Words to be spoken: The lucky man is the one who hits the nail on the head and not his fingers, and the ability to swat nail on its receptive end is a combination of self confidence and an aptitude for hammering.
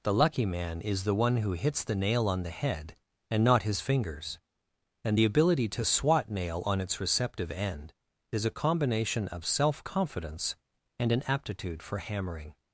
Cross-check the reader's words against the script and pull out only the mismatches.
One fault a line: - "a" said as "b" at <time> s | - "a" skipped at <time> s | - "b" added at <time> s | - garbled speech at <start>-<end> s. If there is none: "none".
none